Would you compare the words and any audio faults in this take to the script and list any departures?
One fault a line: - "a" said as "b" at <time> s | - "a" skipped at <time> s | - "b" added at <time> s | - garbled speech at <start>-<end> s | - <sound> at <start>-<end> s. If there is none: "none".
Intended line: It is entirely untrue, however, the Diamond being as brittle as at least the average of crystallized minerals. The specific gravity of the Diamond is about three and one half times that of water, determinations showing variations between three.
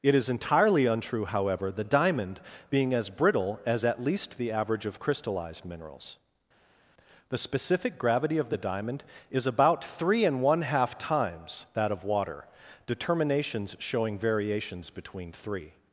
none